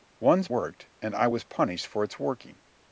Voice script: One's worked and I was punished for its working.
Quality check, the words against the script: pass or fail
pass